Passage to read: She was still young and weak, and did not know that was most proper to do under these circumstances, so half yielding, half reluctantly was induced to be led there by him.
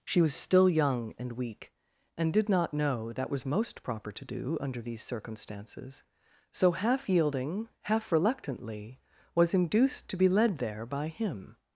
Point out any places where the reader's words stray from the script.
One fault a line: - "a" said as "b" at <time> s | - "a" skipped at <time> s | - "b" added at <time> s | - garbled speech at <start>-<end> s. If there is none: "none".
none